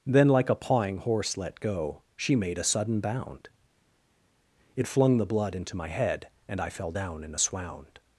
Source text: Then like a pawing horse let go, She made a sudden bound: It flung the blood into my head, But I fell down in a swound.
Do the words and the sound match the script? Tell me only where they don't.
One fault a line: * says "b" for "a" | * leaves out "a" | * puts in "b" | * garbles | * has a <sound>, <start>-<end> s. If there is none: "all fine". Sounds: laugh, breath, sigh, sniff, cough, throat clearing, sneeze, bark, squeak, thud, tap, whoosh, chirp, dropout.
* says "And" for "But"